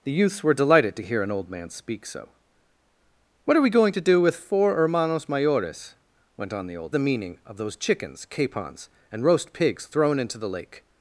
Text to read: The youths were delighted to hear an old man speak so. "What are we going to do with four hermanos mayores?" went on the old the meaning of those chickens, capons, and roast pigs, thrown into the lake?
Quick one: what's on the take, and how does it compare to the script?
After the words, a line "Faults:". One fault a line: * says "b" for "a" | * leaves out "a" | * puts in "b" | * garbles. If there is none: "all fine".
The youths were delighted to hear an old man speak so. "What are we going to do with four hermanos mayores?" went on the old the meaning of those chickens, capons, and roast pigs, thrown into the lake?
Faults:
all fine